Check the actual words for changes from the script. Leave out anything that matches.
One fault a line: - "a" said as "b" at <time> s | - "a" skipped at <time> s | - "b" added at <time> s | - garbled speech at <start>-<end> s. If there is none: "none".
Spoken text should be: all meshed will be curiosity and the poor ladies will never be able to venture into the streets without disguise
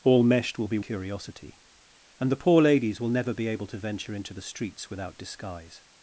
none